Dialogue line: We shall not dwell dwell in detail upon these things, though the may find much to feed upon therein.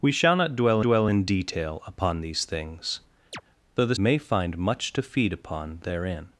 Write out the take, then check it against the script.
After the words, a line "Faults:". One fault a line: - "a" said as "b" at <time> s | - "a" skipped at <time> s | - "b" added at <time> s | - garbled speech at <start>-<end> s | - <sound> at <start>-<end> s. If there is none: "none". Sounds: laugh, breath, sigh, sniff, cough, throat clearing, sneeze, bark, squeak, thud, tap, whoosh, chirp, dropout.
We shall not dwell dwell in detail upon these things, though the may find much to feed upon therein.
Faults:
- chirp at 3.3-3.4 s